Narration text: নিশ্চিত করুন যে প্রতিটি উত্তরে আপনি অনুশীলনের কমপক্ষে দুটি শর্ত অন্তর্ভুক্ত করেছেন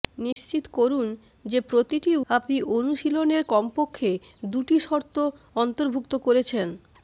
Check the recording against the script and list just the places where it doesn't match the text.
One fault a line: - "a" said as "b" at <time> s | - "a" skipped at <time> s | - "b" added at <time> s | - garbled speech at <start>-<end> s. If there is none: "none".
- "উত্তরে" skipped at 2.1 s